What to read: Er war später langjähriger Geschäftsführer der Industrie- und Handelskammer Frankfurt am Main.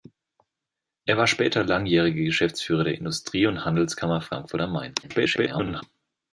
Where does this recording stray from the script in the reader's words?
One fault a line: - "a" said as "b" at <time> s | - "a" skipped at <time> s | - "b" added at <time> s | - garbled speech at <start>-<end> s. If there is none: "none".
- garbled speech at 5.0-5.8 s